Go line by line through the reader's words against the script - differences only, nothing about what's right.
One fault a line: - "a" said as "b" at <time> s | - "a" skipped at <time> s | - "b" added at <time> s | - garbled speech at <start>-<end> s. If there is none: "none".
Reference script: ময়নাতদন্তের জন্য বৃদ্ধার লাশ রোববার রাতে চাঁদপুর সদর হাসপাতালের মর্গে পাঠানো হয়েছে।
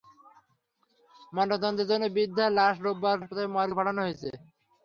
- "রাতে চাঁদপুর সদর" skipped at 3.2 s